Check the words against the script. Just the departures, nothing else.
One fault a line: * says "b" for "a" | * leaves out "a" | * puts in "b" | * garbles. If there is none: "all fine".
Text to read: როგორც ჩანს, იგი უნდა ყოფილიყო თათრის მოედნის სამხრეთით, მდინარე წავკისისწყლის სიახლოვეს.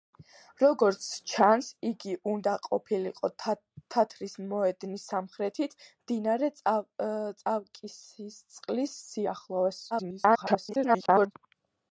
* garbles